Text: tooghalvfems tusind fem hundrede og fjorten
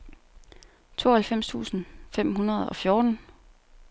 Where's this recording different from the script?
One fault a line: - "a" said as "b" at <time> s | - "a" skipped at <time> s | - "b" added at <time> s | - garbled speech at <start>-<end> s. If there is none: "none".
none